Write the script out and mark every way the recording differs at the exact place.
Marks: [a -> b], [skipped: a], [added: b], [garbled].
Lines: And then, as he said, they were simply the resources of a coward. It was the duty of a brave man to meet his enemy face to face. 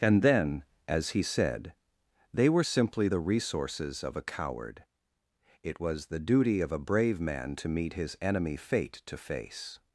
And then, as he said, they were simply the resources of a coward. It was the duty of a brave man to meet his enemy [face -> fate] to face.